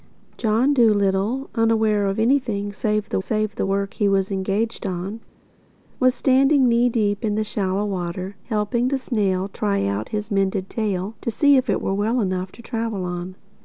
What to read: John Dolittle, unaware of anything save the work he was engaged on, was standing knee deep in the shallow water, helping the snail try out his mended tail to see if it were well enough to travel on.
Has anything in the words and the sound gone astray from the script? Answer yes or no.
yes